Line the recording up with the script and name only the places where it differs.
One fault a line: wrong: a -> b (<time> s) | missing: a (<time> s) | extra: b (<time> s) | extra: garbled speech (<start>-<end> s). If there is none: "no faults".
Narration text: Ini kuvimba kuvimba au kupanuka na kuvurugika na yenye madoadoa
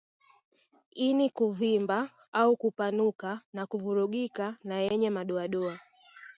missing: kuvimba (2.1 s)